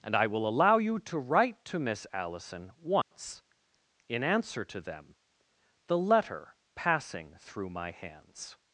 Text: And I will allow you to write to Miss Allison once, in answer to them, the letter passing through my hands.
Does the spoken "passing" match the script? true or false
true